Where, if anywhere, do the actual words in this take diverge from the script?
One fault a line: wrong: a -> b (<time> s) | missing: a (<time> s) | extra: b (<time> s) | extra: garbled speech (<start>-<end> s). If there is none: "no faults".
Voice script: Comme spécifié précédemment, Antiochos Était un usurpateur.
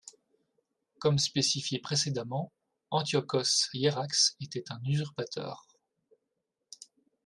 extra: Hiérax (3.7 s)